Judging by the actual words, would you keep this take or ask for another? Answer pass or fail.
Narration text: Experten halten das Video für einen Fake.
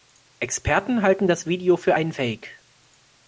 pass